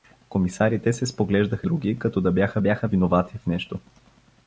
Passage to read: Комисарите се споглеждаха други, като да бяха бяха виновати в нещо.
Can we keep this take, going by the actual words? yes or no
yes